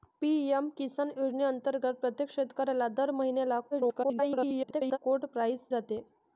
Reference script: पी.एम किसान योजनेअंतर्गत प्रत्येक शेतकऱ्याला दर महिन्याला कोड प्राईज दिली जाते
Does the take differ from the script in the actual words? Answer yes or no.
yes